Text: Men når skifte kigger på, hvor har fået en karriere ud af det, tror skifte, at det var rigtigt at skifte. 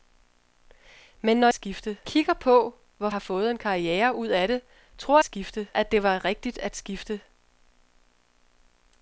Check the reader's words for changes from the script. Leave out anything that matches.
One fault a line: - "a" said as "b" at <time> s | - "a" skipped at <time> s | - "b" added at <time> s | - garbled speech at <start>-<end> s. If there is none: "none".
none